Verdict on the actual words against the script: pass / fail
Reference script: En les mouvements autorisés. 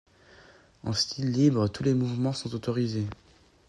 fail